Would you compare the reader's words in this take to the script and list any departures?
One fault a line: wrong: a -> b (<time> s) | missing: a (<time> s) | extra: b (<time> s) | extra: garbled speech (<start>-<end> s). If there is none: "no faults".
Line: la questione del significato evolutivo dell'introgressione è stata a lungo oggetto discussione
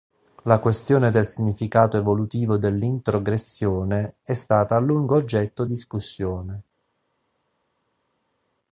no faults